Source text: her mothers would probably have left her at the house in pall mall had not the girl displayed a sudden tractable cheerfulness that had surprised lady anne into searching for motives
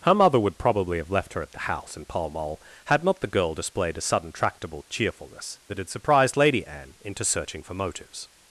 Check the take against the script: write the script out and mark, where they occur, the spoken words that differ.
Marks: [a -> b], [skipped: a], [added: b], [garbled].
her [mothers -> mother] would probably have left her at the house in pall mall had not the girl displayed a sudden tractable cheerfulness that had surprised lady anne into searching for motives